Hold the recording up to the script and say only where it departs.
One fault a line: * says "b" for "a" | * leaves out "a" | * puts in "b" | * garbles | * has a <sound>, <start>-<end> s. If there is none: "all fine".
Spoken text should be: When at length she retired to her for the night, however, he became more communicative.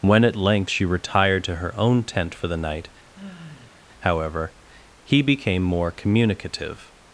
* puts in "own tent"
* has a sigh, 3.1-3.8 s